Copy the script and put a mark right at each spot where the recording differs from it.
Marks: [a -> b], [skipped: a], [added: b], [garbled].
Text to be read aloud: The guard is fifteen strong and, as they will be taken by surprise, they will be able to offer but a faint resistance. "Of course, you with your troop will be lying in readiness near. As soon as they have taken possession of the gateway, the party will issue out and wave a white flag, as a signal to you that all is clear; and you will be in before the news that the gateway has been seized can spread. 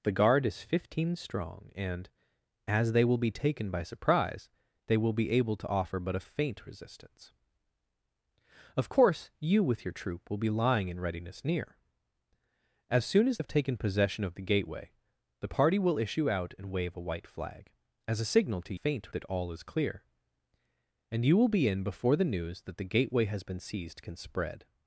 The guard is fifteen strong and, as they will be taken by surprise, they will be able to offer but a faint resistance. "Of course, you with your troop will be lying in readiness near. As soon as [skipped: they] have taken possession of the gateway, the party will issue out and wave a white flag, as a signal to [you -> faint] that all is clear; and you will be in before the news that the gateway has been seized can spread.